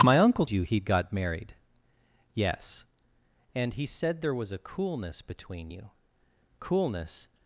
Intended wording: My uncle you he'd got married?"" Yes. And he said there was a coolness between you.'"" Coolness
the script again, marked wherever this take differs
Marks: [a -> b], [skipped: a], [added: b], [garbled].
My uncle you he'd got married?"" Yes. And he said there was a coolness between you.'"" Coolness